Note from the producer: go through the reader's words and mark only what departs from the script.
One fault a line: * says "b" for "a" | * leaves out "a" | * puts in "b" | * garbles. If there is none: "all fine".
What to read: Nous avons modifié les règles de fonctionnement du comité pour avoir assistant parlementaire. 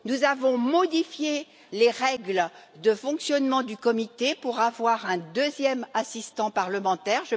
* puts in "un deuxième"